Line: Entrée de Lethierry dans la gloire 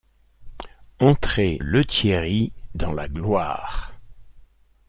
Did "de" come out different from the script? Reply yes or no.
yes